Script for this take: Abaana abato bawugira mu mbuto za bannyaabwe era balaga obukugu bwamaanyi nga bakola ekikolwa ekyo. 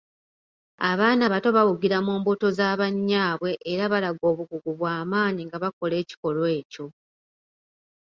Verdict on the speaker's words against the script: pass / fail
pass